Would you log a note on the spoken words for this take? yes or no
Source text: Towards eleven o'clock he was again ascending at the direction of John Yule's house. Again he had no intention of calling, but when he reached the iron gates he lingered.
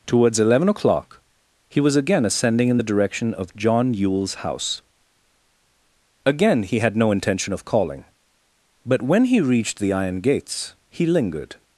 yes